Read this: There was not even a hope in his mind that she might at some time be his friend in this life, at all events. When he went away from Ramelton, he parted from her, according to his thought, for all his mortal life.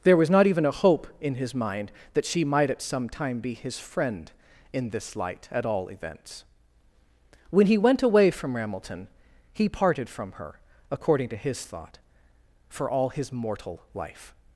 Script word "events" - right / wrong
right